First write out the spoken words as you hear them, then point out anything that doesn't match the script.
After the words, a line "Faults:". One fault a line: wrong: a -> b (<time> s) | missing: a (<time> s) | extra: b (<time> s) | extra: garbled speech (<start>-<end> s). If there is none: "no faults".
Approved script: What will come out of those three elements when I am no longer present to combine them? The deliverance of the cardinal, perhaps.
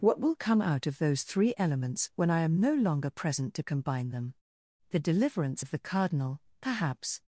What will come out of those three elements when I am no longer present to combine them? The deliverance of the cardinal, perhaps.
Faults:
no faults